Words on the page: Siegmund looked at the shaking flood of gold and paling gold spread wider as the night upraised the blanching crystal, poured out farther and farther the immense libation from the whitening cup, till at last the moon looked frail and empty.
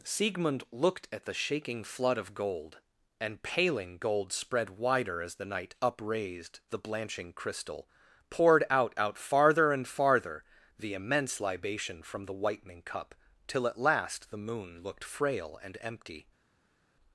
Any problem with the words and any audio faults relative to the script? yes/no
yes